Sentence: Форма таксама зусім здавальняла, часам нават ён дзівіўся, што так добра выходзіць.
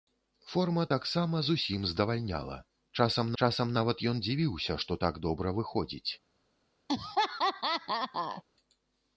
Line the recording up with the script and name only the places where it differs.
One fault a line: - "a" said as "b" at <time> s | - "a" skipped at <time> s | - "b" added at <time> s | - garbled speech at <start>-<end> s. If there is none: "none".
- "часам" added at 3.4 s